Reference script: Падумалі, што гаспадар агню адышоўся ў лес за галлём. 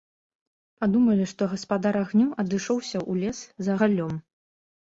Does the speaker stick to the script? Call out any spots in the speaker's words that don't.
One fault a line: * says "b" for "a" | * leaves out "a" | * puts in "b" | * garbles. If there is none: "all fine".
all fine